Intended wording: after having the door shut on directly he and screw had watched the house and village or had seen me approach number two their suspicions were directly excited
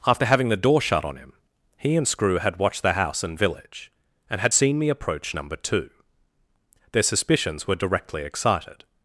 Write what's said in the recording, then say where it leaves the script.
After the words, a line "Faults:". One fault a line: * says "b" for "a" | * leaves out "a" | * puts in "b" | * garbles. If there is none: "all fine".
after having the door shut on him he and screw had watched the house and village and had seen me approach number two their suspicions were directly excited
Faults:
* says "him" for "directly"
* says "and" for "or"